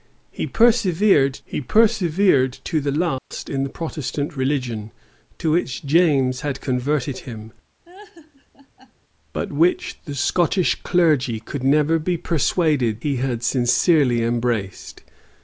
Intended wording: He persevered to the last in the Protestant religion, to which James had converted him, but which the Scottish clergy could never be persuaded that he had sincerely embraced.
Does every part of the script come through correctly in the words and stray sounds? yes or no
no